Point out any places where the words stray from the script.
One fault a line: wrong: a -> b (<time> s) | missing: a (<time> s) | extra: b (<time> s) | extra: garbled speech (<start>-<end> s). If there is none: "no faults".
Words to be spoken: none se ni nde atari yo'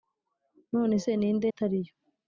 no faults